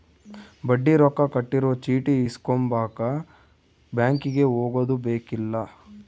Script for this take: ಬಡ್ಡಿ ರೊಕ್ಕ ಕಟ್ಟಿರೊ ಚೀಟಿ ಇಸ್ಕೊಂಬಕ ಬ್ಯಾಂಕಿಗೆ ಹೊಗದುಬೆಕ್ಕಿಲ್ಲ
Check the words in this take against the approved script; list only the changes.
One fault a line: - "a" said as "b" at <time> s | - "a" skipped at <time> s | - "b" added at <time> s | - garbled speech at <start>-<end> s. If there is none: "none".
none